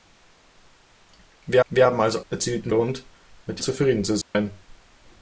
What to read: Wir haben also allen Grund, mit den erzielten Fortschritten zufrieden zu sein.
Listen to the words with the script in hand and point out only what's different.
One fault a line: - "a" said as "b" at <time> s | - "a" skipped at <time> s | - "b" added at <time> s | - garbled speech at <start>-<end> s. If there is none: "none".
- "wir" added at 1.7 s
- "allen" said as "erzielten" at 2.3 s
- "den erzielten Fortschritten" skipped at 3.6 s